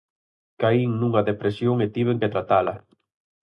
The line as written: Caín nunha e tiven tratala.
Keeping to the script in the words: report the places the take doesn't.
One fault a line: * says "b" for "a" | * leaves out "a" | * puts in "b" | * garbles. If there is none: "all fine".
* puts in "depresión"
* puts in "que"